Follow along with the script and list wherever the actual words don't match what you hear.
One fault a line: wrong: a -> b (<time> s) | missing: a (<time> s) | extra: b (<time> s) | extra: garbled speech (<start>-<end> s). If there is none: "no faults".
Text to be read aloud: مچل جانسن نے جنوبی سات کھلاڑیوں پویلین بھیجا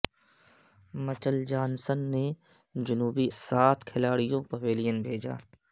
no faults